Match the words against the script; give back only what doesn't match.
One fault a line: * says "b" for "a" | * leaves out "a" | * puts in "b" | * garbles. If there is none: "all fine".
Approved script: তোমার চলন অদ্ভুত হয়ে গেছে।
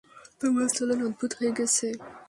all fine